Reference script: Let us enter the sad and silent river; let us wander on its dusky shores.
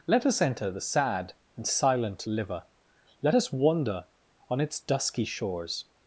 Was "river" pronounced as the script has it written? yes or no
no